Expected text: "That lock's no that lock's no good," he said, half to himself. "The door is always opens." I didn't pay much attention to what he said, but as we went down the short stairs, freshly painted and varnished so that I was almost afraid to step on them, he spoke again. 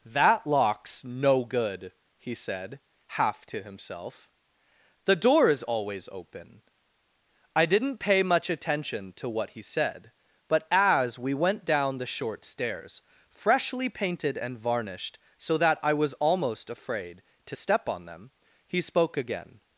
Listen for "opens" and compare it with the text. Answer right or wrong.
wrong